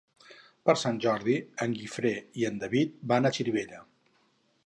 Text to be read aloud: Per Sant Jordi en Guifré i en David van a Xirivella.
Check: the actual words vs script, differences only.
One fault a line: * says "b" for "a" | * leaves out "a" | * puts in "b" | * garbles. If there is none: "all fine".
all fine